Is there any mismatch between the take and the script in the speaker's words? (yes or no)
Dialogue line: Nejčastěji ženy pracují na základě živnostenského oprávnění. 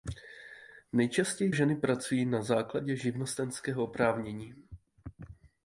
no